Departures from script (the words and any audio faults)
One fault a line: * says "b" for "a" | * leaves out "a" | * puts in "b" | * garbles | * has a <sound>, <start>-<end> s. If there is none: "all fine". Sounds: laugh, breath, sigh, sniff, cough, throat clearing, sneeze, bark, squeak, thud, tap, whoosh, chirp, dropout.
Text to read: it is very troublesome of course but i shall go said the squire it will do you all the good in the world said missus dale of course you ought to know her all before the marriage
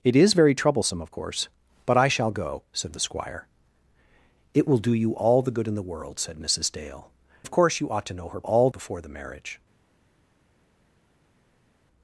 all fine